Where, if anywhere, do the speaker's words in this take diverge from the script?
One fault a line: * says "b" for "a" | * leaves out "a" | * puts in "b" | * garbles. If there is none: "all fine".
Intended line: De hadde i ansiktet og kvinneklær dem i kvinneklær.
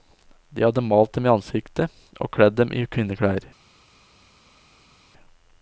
* puts in "malt dem"
* says "kledd" for "kvinneklær"